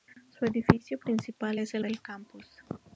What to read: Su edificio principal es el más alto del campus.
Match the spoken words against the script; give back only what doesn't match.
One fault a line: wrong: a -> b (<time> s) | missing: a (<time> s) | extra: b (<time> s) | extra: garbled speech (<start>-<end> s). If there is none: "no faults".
missing: más alto (1.8 s)